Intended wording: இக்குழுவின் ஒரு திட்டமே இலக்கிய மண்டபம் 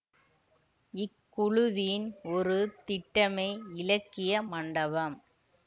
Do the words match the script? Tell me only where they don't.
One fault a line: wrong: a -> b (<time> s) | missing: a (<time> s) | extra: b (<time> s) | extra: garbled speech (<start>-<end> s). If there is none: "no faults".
no faults